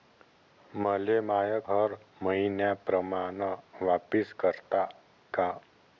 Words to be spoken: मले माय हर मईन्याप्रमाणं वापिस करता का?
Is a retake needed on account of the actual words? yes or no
no